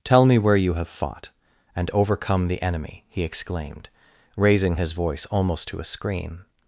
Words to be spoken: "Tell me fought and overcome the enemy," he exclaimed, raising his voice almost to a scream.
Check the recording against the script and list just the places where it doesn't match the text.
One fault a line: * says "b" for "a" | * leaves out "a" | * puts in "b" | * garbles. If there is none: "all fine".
* puts in "where you have"